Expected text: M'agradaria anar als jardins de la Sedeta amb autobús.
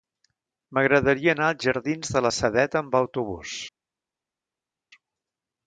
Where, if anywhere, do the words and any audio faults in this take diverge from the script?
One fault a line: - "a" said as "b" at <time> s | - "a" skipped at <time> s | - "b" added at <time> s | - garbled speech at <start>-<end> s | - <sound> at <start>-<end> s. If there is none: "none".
none